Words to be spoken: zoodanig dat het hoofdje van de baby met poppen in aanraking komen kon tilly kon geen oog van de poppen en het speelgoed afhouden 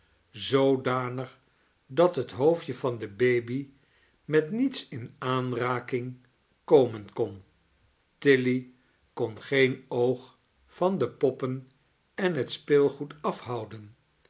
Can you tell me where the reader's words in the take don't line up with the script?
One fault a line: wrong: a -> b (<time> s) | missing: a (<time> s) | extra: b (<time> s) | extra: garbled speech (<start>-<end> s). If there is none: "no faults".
wrong: poppen -> niets (4.5 s)